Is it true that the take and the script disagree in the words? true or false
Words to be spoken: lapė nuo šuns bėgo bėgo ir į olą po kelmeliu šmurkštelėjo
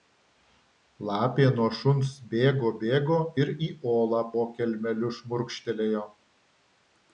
false